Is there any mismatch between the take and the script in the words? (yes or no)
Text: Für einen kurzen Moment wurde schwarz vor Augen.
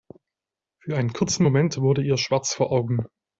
yes